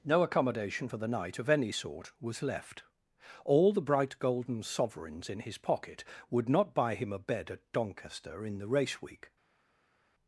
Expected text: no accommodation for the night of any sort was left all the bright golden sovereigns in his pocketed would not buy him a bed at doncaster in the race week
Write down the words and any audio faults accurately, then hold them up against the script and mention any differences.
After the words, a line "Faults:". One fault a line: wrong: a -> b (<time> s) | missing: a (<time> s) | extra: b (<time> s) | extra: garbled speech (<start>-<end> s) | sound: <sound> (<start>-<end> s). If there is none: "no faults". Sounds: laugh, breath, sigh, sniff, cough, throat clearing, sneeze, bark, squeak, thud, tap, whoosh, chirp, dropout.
no accommodation for the night of any sort was left all the bright golden sovereigns in his pocket would not buy him a bed at doncaster in the race week
Faults:
wrong: pocketed -> pocket (5.6 s)